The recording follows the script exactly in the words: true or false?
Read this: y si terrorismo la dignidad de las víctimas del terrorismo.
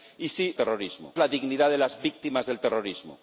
true